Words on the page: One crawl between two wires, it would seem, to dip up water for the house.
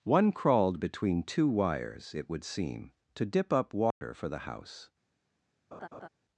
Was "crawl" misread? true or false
true